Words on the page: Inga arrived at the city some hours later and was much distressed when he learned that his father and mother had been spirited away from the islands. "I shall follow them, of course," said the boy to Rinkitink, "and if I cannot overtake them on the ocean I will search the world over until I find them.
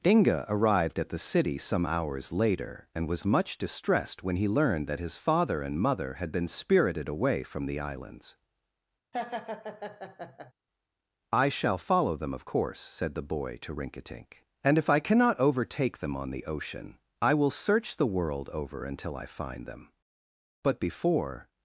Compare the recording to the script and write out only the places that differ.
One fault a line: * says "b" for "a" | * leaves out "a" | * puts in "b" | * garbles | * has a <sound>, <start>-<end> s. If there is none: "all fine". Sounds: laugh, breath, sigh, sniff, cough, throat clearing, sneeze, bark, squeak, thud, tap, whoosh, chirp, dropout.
* has a laugh, 9.1-10.5 s
* puts in "But before"